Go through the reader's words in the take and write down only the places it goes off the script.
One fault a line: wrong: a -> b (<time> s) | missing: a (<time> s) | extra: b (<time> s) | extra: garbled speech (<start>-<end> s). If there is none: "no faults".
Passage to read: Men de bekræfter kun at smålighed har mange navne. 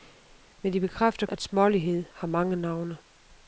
missing: kun (1.3 s)